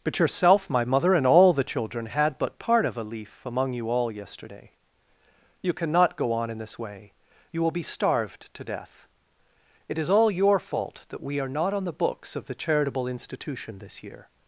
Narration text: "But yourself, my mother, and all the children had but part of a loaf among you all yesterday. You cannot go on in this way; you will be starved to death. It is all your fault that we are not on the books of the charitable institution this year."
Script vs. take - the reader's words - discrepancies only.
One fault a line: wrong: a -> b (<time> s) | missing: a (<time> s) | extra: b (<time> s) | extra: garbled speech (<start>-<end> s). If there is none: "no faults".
wrong: loaf -> leaf (3.0 s)